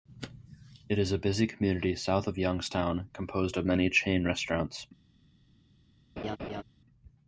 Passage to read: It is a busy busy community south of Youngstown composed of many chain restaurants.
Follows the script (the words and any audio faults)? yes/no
no